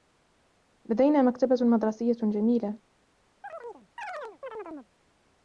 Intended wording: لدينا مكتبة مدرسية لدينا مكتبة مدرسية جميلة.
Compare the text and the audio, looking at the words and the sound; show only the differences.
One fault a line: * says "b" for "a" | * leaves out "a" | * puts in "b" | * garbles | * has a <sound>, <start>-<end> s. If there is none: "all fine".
* leaves out "لدينا مكتبة مدرسية"
* has a chirp, 3.4-4.9 s